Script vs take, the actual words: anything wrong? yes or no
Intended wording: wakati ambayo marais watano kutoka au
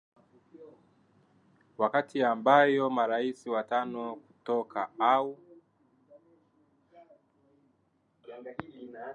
no